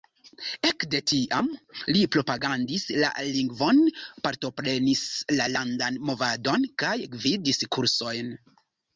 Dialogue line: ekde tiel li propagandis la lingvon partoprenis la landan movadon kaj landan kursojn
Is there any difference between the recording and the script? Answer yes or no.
yes